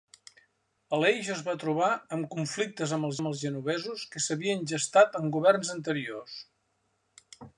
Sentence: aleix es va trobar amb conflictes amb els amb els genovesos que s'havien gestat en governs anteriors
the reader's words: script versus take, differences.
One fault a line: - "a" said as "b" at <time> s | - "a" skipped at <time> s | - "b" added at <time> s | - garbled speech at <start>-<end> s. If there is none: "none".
none